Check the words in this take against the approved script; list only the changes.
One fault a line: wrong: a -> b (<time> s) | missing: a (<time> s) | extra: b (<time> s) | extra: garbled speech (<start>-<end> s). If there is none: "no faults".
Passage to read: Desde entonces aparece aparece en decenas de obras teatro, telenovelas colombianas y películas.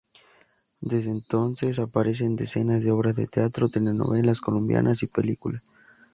missing: aparece (2.2 s)
extra: de (3.2 s)